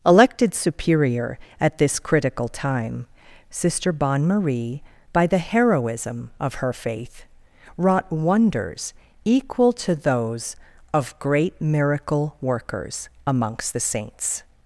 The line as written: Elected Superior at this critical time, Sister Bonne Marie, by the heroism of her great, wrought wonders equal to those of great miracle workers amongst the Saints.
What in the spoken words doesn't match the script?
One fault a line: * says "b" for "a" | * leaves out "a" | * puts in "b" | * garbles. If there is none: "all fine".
* says "faith" for "great"